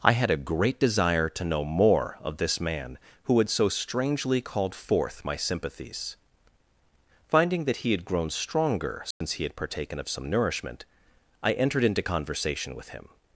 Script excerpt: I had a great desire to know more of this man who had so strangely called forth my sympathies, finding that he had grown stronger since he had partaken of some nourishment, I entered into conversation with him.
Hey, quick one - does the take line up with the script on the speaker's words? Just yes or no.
yes